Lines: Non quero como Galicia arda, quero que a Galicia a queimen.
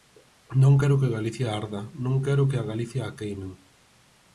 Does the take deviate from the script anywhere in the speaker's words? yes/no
yes